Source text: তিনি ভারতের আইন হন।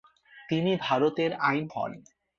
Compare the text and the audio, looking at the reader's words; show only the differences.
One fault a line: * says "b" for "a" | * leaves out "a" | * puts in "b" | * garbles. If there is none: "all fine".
all fine